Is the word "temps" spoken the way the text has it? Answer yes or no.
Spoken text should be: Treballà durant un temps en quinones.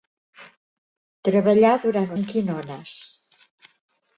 no